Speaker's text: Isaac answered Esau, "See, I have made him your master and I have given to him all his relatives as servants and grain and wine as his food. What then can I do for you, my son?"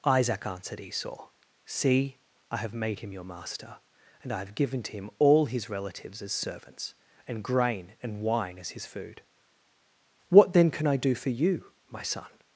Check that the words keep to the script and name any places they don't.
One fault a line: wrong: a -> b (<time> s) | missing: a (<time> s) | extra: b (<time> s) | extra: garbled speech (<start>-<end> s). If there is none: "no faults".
no faults